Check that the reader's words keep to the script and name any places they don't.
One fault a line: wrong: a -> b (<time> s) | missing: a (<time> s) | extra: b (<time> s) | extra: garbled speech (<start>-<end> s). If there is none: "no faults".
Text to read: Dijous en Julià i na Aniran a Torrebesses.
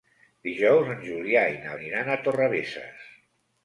no faults